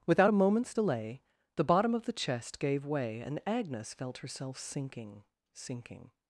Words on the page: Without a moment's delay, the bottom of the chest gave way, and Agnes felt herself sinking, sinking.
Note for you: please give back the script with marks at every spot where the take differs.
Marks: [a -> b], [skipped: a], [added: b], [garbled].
Without a moment's delay, the bottom of the chest gave way, and Agnes felt herself sinking, sinking.